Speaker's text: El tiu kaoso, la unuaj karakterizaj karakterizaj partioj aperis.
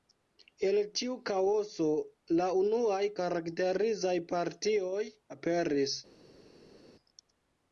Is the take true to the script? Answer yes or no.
no